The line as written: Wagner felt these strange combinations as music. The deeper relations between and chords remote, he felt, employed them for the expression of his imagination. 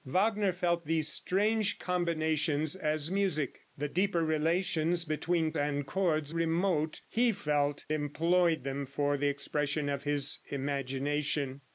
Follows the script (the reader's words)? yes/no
yes